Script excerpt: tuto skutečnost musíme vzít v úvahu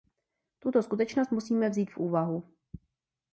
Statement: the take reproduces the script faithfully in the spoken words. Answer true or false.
true